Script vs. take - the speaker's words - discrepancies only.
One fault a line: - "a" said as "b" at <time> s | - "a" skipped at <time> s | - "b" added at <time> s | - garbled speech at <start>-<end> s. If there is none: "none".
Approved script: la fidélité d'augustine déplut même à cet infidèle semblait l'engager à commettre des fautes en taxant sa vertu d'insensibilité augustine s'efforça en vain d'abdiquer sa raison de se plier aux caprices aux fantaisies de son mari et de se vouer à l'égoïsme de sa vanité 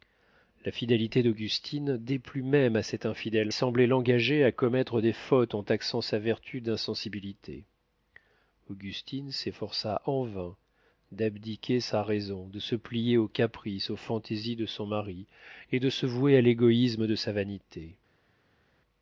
none